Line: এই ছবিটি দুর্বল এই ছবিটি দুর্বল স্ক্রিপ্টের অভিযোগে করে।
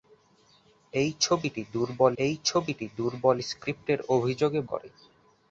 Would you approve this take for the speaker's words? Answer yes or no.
yes